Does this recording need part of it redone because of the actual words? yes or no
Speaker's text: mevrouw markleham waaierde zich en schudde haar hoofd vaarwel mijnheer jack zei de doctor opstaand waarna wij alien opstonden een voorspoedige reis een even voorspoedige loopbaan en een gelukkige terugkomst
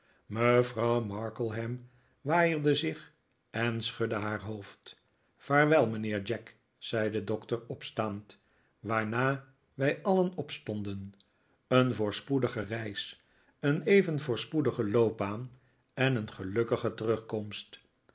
no